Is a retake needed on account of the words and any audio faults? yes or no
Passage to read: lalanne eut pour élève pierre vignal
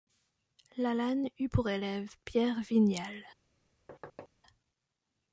yes